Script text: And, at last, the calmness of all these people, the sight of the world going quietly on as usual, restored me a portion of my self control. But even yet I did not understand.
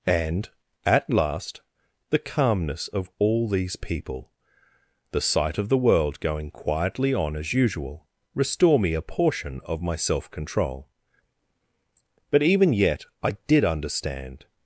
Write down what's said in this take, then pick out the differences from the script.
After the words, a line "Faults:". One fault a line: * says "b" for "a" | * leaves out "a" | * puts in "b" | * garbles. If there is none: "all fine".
And, at last, the calmness of all these people, the sight of the world going quietly on as usual, restore me a portion of my self control. But even yet I did understand.
Faults:
* says "restore" for "restored"
* leaves out "not"